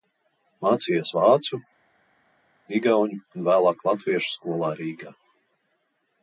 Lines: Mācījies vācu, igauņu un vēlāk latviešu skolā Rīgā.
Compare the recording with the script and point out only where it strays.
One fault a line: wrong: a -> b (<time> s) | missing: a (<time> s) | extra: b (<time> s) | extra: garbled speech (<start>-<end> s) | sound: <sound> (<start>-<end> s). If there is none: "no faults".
no faults